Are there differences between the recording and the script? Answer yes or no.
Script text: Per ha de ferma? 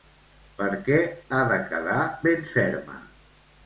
yes